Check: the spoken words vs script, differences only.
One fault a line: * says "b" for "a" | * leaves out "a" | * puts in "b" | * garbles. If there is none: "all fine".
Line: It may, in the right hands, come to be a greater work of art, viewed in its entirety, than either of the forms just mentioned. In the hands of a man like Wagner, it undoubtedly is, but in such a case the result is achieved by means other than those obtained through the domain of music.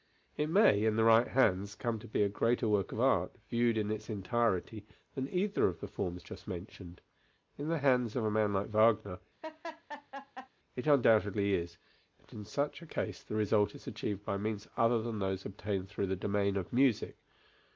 all fine